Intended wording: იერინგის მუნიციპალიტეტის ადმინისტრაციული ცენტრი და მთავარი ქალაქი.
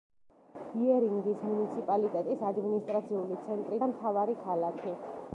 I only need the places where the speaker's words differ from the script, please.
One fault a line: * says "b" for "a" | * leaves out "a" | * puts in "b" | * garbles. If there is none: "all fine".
all fine